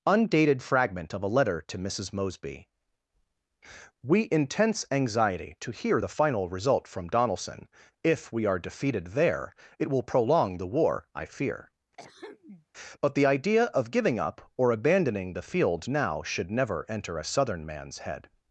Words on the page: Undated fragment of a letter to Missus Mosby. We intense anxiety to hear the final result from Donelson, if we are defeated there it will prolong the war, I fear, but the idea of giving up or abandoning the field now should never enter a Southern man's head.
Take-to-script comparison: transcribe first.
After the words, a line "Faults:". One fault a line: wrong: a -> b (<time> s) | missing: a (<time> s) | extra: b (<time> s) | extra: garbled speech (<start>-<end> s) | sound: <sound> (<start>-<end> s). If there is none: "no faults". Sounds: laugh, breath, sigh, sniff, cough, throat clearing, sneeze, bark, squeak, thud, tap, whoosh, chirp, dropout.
Undated fragment of a letter to Missus Mosby. We intense anxiety to hear the final result from Donelson, if we are defeated there it will prolong the war, I fear, but the idea of giving up or abandoning the field now should never enter a Southern man's head.
Faults:
sound: throat clearing (12.0-12.7 s)